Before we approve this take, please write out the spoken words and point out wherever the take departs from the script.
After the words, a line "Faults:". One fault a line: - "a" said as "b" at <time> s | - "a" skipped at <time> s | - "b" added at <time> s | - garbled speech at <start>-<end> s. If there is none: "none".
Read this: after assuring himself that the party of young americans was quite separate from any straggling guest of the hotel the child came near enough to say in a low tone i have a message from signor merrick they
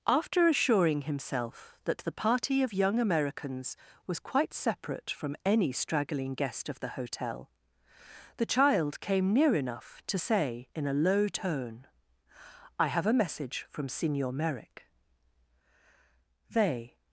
after assuring himself that the party of young americans was quite separate from any straggling guest of the hotel the child came near enough to say in a low tone i have a message from signor merrick they
Faults:
none